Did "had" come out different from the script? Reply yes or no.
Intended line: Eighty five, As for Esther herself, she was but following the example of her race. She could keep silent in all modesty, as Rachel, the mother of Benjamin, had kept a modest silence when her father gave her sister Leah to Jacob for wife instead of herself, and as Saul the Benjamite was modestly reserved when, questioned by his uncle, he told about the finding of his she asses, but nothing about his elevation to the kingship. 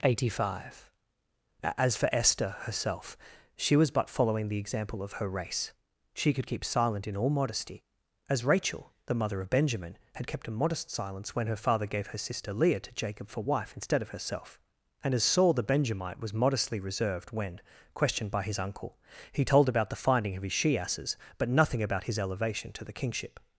no